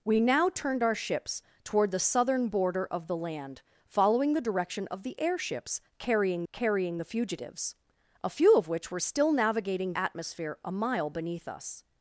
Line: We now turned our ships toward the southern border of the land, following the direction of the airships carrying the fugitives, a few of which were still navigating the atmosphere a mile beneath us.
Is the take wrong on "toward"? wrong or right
right